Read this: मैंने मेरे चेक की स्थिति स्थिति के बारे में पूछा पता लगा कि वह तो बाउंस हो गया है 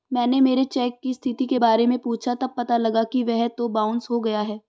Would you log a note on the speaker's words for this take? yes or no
yes